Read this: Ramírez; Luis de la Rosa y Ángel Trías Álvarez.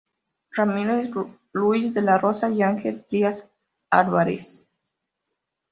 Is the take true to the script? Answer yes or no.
yes